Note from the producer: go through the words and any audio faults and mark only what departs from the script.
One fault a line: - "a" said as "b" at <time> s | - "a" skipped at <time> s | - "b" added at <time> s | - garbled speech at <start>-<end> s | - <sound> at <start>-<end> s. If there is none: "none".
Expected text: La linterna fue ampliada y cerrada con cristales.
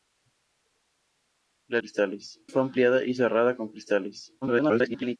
- "linterna" said as "cristales" at 1.8 s
- garbled speech at 4.4-5.2 s